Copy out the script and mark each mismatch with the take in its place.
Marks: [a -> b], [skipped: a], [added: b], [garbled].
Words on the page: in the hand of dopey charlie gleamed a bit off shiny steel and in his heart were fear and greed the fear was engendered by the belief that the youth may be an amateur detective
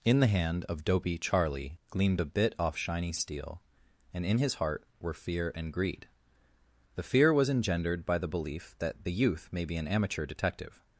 in the hand of dopey charlie gleamed a bit off shiny steel and in his heart were fear and greed the fear was engendered by the belief that the youth may be an amateur detective